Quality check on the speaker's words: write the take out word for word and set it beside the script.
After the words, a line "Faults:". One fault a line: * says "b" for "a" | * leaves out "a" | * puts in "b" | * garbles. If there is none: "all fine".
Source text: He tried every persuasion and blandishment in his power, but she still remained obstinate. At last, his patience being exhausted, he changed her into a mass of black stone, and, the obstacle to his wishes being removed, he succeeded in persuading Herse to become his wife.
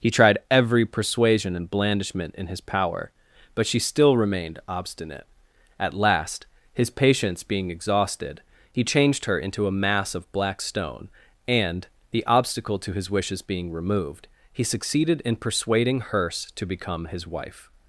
He tried every persuasion and blandishment in his power, but she still remained obstinate. At last, his patience being exhausted, he changed her into a mass of black stone, and, the obstacle to his wishes being removed, he succeeded in persuading Herse to become his wife.
Faults:
all fine